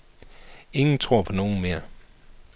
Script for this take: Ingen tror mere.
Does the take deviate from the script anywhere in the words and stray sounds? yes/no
yes